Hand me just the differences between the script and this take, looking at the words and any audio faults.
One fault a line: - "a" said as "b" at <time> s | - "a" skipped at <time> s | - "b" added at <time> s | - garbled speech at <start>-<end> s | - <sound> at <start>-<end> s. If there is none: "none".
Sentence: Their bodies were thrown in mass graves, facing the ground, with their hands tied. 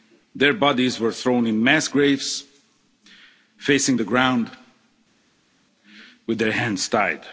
none